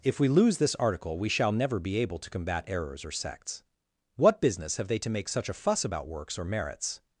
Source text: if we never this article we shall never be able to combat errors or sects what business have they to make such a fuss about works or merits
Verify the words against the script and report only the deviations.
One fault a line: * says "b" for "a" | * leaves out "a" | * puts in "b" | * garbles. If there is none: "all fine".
* says "lose" for "never"